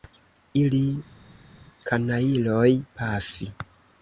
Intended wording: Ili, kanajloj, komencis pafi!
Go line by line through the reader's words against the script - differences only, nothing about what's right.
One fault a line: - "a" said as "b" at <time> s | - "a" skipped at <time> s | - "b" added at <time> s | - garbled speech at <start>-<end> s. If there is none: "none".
- "komencis" skipped at 2.7 s